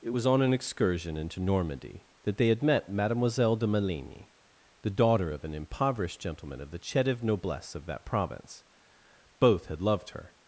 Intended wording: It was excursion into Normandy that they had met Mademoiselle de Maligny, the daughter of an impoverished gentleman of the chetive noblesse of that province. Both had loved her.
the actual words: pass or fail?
fail